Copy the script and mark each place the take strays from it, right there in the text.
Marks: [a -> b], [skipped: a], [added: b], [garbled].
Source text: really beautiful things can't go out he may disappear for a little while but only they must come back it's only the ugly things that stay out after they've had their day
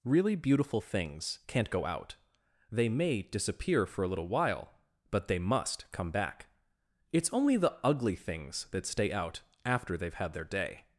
really beautiful things can't go out [he -> they] may disappear for a little while but [skipped: only] they must come back it's only the ugly things that stay out after they've had their day